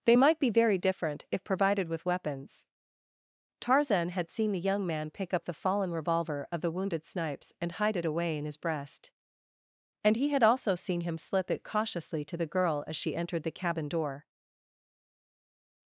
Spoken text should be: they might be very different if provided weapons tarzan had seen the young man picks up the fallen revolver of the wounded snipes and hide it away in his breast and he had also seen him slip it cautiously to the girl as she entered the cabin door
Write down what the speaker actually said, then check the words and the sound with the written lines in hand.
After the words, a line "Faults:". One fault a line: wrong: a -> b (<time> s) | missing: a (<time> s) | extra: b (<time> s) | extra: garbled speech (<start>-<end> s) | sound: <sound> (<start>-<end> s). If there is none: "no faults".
they might be very different if provided with weapons tarzan had seen the young man pick up the fallen revolver of the wounded snipes and hide it away in his breast and he had also seen him slip it cautiously to the girl as she entered the cabin door
Faults:
extra: with (1.9 s)
wrong: picks -> pick (5.1 s)